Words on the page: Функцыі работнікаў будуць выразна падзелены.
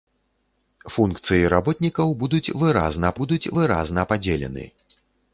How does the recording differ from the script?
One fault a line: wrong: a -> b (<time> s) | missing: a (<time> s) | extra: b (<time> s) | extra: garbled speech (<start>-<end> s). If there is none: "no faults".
extra: будуць выразна (3.2 s)